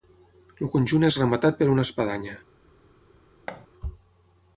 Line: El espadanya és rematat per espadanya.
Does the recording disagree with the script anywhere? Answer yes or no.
yes